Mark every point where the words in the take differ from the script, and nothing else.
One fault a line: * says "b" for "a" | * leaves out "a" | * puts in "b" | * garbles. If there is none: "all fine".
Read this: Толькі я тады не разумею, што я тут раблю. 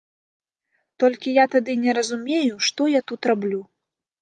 all fine